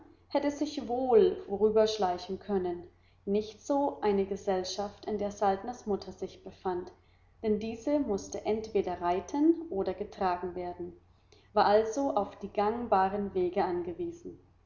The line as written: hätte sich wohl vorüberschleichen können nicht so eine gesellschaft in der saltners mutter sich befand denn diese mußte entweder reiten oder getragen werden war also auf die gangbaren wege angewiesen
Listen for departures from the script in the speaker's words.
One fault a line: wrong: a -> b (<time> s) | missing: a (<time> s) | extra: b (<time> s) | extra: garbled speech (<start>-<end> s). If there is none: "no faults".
no faults